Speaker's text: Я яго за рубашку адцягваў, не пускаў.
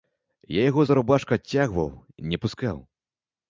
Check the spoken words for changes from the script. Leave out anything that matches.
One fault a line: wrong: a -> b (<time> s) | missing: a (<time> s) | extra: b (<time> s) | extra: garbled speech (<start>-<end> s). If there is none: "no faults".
no faults